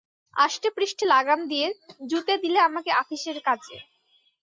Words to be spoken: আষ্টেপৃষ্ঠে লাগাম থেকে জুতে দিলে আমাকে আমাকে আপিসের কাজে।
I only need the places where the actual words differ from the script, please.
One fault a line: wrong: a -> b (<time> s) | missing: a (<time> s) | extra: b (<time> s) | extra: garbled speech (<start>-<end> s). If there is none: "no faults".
wrong: থেকে -> দিয়ে (1.5 s)
missing: আমাকে (2.9 s)